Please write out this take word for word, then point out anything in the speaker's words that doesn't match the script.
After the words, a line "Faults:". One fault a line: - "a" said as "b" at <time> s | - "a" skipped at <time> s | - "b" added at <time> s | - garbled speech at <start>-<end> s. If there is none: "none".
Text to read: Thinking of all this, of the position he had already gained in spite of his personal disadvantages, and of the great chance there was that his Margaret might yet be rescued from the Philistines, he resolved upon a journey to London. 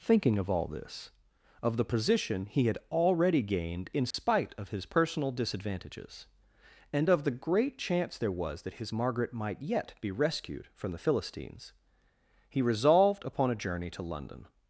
Thinking of all this, of the position he had already gained in spite of his personal disadvantages, and of the great chance there was that his Margaret might yet be rescued from the Philistines, he resolved upon a journey to London.
Faults:
none